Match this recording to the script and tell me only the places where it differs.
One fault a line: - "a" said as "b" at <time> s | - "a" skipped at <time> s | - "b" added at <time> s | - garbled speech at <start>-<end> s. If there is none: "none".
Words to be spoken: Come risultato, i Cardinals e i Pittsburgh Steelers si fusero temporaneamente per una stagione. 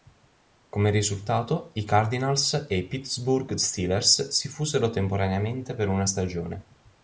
none